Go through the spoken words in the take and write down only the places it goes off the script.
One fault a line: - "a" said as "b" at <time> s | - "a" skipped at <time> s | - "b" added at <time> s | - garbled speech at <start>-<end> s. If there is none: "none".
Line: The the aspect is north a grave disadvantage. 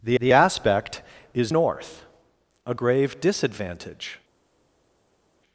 none